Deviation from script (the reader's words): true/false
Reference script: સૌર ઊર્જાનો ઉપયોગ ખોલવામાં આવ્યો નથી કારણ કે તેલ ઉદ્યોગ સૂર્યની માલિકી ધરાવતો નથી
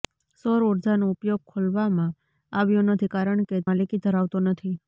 true